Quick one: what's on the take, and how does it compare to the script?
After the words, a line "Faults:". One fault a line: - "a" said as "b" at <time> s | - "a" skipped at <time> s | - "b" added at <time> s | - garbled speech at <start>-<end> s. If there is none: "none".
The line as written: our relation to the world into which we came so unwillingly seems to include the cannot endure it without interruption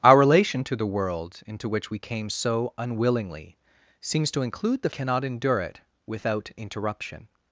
our relation to the world into which we came so unwillingly seems to include the cannot endure it without interruption
Faults:
none